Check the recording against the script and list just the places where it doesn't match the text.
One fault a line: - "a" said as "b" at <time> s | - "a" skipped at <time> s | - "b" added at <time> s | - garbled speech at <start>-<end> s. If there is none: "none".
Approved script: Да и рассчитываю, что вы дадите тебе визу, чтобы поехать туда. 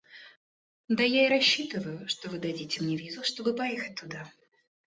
- "я" added at 1.0 s
- "тебе" said as "мне" at 2.8 s